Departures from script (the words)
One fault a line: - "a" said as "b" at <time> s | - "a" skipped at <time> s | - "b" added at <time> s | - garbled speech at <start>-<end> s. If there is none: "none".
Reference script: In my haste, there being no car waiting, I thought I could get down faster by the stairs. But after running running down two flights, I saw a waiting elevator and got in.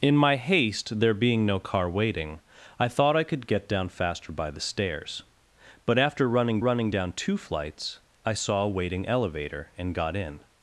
none